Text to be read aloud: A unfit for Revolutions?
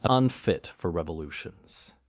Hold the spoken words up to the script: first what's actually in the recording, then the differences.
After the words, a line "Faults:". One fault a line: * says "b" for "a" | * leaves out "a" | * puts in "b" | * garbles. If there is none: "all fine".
A unfit for Revolutions?
Faults:
all fine